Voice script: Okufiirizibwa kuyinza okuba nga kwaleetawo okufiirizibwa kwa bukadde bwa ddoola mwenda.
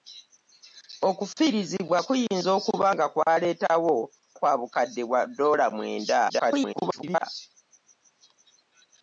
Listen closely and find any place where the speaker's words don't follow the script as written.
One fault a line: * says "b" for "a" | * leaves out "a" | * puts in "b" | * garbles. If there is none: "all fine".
* leaves out "okufiirizibwa"
* garbles